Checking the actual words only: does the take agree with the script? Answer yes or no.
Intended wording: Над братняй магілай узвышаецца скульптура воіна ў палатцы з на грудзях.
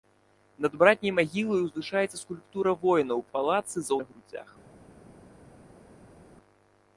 yes